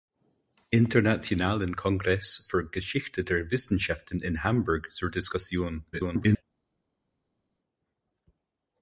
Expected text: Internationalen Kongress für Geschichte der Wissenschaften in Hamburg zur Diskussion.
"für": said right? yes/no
yes